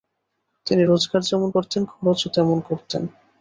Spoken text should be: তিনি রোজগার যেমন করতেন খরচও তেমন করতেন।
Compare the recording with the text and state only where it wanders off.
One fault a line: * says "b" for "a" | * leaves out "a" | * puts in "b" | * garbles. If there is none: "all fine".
all fine